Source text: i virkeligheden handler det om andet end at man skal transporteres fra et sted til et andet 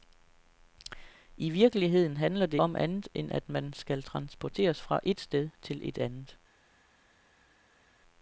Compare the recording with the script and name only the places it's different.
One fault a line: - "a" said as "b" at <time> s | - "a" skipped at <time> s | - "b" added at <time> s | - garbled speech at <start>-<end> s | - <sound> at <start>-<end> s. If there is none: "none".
none